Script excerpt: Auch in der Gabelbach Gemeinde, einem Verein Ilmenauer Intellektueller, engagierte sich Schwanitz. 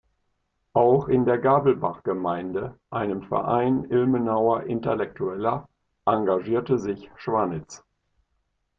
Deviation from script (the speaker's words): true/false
false